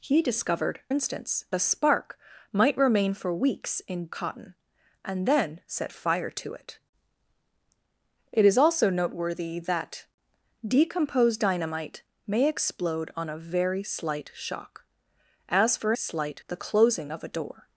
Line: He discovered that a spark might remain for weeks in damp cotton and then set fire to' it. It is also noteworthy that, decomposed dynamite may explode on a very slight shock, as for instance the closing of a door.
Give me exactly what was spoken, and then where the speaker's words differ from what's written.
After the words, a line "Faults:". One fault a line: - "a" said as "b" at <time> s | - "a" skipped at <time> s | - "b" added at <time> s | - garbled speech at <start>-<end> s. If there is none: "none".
He discovered instance a spark might remain for weeks in cotton and then set fire to' it. It is also noteworthy that, decomposed dynamite may explode on a very slight shock, as for slight the closing of a door.
Faults:
- "that" said as "instance" at 0.9 s
- "damp" skipped at 4.1 s
- "instance" said as "slight" at 15.9 s